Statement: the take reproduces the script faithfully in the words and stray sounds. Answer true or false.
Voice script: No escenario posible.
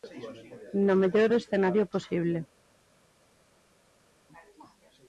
false